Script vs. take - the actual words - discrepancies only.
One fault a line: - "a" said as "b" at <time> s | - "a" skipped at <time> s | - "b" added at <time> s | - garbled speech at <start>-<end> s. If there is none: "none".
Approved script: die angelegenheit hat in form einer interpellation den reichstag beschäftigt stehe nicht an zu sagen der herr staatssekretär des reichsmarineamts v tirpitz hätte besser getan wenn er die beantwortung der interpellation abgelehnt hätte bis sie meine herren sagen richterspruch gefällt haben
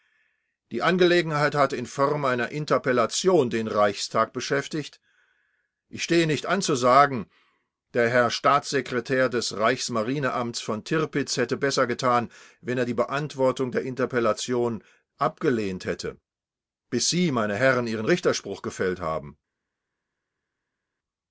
- "ich" added at 5.9 s
- "sagen" said as "ihren" at 17.9 s